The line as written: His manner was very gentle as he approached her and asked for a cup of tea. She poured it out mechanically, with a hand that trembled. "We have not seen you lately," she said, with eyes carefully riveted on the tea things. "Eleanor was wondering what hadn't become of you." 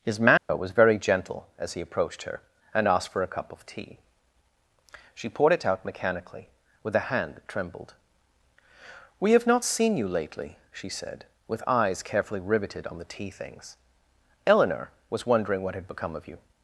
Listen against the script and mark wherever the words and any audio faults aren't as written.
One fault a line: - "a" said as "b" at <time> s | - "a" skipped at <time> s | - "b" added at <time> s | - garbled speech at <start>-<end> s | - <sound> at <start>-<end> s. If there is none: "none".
- dropout at 0.4-0.5 s
- "hadn't" said as "had" at 15.7 s